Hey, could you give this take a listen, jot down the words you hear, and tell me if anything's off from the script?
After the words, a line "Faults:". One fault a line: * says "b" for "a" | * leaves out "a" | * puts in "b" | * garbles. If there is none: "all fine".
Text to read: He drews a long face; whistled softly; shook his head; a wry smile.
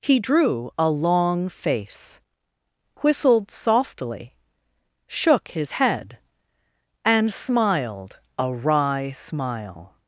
He drew a long face; whistled softly; shook his head; and smiled a wry smile.
Faults:
* says "drew" for "drews"
* puts in "and smiled"